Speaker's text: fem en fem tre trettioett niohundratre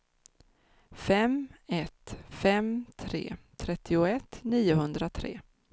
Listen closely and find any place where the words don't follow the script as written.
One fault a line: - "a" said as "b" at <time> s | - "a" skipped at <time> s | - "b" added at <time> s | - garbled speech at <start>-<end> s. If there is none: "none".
- "en" said as "ett" at 1.7 s